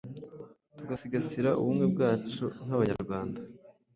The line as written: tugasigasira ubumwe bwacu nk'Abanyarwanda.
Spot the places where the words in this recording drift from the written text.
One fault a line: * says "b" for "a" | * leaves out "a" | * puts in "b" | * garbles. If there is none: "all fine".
all fine